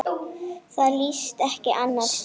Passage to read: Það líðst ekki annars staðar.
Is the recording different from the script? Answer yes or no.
no